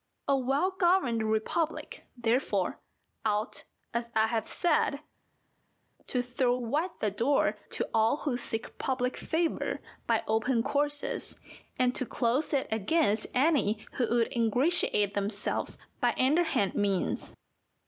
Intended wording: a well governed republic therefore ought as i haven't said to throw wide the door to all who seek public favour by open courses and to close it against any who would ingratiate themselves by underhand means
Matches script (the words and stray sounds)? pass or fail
fail